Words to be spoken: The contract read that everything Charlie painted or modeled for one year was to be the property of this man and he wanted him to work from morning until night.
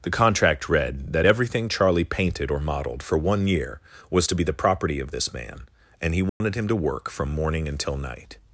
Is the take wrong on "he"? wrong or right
right